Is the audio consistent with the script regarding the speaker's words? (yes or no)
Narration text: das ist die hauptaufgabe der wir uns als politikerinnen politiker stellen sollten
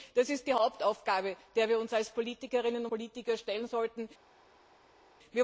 yes